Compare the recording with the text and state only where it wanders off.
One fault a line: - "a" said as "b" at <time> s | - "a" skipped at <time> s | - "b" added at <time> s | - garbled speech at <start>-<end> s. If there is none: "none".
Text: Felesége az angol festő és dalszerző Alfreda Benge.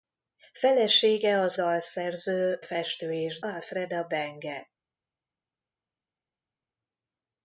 - "angol" said as "dalszerző" at 1.5 s
- "dalszerző" skipped at 3.4 s